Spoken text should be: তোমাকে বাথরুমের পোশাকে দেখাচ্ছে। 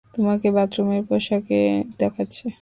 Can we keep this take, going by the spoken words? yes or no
yes